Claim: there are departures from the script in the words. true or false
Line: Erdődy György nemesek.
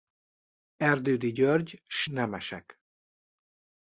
true